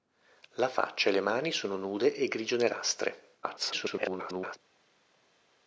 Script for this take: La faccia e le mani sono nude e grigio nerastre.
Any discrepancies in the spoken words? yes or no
yes